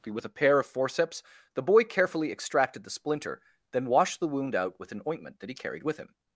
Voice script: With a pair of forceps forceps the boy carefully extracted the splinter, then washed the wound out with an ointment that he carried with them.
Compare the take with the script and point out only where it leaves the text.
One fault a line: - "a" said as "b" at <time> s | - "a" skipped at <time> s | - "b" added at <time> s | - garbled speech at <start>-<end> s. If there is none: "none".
- "forceps" skipped at 1.2 s
- "them" said as "him" at 6.0 s